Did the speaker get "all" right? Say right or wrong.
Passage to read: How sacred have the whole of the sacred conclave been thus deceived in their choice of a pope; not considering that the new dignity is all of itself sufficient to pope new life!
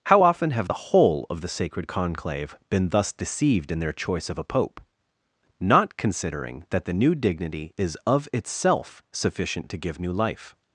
wrong